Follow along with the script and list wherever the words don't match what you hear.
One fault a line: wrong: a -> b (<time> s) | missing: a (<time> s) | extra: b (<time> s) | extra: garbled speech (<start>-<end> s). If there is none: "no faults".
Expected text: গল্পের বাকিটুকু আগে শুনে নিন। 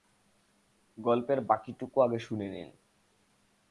no faults